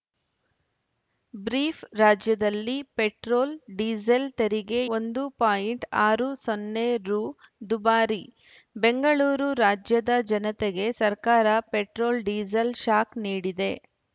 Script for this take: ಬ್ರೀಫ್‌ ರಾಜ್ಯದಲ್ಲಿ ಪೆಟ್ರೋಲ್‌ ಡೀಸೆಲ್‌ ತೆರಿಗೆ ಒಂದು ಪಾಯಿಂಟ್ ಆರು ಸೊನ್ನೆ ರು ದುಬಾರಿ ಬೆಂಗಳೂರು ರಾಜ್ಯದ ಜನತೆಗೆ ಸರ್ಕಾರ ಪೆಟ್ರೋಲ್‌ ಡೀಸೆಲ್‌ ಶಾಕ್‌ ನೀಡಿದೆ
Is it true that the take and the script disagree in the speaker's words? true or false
false